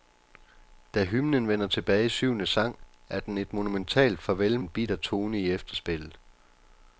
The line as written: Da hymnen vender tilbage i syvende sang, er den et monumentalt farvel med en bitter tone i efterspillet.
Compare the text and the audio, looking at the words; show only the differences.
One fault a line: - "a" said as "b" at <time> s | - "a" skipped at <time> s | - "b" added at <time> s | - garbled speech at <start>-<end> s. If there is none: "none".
- "med" skipped at 4.6 s